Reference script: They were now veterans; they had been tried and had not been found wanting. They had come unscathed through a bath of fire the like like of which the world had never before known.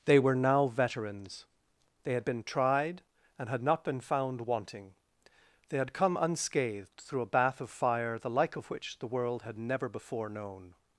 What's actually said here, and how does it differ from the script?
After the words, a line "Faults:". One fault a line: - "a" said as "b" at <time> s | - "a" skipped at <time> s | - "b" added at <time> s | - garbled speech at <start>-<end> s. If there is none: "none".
They were now veterans; they had been tried and had not been found wanting. They had come unscathed through a bath of fire the like of which the world had never before known.
Faults:
- "like" skipped at 8.6 s